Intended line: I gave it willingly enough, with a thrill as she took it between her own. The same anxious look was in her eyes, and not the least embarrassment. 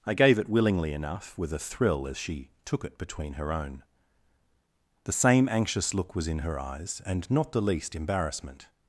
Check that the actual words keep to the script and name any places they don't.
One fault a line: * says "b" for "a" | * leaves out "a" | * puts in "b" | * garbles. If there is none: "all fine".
all fine